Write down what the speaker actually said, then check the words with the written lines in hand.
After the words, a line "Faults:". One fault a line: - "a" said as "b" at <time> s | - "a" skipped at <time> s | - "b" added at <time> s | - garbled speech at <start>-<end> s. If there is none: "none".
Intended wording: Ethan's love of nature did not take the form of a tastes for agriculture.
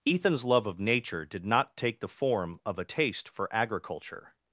Ethan's love of nature did not take the form of a taste for agriculture.
Faults:
- "tastes" said as "taste" at 2.8 s